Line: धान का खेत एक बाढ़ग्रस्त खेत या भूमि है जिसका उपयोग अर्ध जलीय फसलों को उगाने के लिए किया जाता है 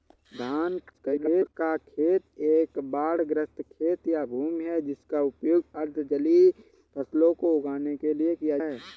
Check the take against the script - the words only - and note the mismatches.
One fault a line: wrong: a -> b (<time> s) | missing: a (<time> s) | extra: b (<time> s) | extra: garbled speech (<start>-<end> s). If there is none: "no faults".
extra: garbled speech (0.9-1.5 s)
missing: जाता (8.6 s)